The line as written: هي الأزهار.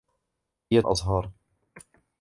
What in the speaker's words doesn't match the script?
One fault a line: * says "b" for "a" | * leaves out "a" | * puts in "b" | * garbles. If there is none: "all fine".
all fine